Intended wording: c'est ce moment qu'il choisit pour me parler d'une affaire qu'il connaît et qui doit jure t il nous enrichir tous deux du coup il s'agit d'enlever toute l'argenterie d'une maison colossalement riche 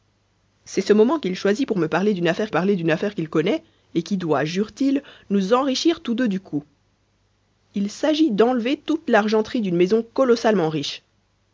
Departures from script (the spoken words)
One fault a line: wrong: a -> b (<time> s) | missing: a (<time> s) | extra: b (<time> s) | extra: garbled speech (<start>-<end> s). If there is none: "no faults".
extra: parler d'une affaire (2.5 s)